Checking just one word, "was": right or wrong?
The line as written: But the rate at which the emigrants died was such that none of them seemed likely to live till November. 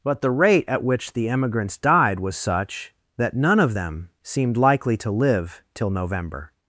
right